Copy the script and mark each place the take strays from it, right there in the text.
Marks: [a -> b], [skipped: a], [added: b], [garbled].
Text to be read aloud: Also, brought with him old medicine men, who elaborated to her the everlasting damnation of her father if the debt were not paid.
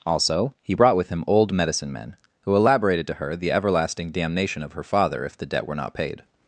Also, [added: he] brought with him old medicine men, who elaborated to her the everlasting damnation of her father if the debt were not paid.